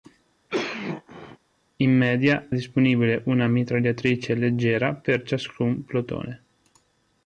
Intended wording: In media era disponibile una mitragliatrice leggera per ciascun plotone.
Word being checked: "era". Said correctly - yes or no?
no